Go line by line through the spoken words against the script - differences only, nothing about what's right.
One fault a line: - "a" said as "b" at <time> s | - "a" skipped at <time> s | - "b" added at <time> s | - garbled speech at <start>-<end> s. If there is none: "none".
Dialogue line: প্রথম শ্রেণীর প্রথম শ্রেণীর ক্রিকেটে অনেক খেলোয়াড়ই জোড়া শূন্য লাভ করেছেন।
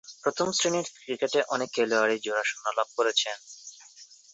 - "প্রথম শ্রেণীর" skipped at 0.9 s